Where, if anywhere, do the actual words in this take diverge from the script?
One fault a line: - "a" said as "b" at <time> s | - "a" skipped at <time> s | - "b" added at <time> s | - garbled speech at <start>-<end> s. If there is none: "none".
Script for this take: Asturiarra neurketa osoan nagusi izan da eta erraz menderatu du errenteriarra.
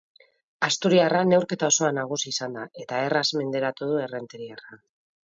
none